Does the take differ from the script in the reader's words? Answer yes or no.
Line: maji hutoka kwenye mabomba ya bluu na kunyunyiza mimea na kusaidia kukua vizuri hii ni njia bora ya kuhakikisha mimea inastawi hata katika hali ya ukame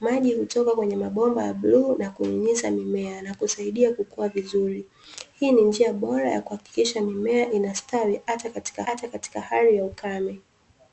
yes